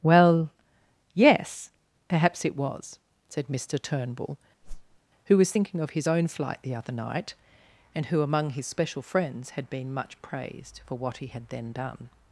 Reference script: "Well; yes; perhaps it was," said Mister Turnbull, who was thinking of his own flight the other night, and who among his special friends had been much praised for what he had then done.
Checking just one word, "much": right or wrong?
right